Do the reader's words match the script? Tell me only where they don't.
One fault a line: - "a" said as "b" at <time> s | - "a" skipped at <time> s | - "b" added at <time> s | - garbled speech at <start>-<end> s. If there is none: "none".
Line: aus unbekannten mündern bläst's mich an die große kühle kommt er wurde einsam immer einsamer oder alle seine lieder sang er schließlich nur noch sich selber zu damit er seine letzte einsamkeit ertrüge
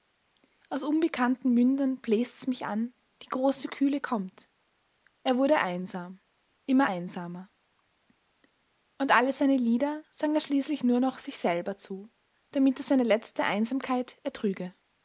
- "oder" said as "und" at 9.0 s